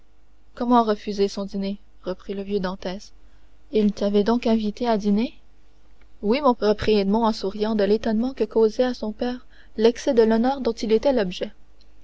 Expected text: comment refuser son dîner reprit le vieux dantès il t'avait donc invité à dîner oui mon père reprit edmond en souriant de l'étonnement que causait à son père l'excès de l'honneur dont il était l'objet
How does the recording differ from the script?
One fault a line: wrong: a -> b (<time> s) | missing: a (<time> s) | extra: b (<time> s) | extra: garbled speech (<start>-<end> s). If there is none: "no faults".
missing: père (6.5 s)